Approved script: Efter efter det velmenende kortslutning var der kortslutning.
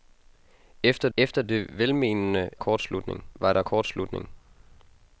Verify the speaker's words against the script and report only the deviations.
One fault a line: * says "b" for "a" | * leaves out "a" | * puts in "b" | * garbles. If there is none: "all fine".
all fine